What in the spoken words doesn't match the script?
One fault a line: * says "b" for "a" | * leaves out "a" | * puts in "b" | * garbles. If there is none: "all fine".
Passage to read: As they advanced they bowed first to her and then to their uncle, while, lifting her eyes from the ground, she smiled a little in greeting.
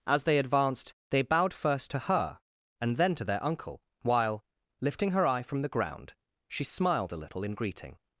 * says "eye" for "eyes"